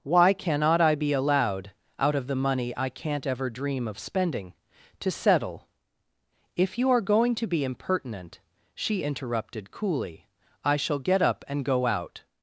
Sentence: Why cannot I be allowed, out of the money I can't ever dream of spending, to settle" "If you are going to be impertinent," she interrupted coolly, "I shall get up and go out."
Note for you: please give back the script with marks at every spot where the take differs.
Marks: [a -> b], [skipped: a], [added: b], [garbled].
Why cannot I be allowed, out of the money I can't ever dream of spending, to settle" "If you are going to be impertinent," she interrupted coolly, "I shall get up and go out."